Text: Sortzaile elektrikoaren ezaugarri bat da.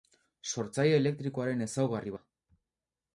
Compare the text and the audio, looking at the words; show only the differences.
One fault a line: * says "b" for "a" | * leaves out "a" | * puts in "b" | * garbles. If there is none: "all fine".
* leaves out "bat"